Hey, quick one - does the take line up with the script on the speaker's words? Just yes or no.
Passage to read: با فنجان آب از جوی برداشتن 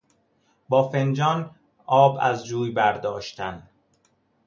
yes